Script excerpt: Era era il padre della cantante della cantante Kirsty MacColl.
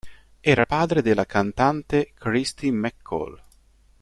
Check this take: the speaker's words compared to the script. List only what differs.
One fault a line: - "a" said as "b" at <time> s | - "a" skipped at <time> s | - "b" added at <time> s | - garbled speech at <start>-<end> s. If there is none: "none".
- "era" skipped at 0.6 s
- "della cantante" skipped at 2.1 s